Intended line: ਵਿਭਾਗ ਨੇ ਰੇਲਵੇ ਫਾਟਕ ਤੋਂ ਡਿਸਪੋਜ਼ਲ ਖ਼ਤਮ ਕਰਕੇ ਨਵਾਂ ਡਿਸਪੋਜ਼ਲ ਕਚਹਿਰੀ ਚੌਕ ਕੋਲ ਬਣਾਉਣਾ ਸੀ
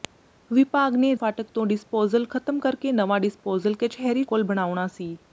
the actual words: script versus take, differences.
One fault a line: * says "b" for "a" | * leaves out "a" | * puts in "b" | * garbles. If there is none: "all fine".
* leaves out "ਰੇਲਵੇ"
* leaves out "ਚੌਕ"